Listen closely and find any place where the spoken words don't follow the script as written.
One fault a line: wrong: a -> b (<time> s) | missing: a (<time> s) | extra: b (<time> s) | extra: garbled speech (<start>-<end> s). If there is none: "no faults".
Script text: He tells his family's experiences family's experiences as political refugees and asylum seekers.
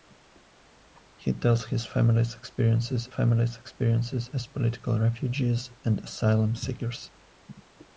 no faults